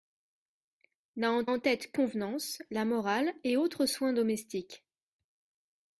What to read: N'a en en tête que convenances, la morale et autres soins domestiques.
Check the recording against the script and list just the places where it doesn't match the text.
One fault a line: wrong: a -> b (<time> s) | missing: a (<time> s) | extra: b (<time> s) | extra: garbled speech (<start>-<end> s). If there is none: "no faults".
no faults